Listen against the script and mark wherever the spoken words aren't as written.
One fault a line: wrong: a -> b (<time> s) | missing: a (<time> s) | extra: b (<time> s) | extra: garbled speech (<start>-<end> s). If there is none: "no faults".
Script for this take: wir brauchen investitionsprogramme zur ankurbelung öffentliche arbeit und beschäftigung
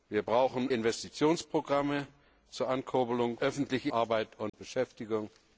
no faults